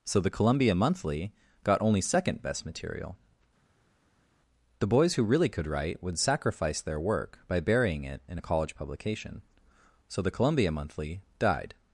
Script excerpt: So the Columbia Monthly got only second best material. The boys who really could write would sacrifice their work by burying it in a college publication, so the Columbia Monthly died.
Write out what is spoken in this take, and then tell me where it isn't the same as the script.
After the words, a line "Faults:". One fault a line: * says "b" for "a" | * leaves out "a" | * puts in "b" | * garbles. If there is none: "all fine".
So the Columbia Monthly got only second best material. The boys who really could write would sacrifice their work by burying it in a college publication, so the Columbia Monthly died.
Faults:
all fine